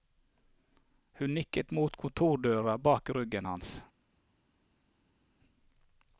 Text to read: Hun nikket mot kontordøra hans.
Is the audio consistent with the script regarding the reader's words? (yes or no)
no